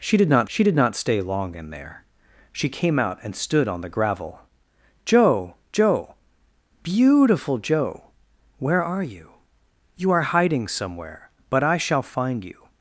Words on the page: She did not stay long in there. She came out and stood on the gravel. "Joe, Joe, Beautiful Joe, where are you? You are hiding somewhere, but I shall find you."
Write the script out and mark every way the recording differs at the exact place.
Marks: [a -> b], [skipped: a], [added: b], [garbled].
She did not [added: she did not] stay long in there. She came out and stood on the gravel. "Joe, Joe, Beautiful Joe, where are you? You are hiding somewhere, but I shall find you."